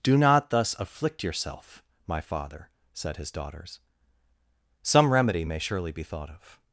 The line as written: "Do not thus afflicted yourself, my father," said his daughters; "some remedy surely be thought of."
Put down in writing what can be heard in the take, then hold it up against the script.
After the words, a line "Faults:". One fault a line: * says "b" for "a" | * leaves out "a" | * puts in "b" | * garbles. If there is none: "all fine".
"Do not thus afflict yourself, my father," said his daughters; "some remedy may surely be thought of."
Faults:
* says "afflict" for "afflicted"
* puts in "may"